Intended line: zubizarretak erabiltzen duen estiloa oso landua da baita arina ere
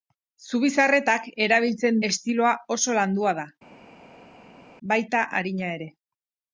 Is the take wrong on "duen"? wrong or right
wrong